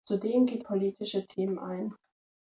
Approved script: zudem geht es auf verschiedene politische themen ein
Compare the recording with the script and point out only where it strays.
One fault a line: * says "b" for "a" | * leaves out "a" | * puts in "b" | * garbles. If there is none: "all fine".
* leaves out "es auf verschiedene"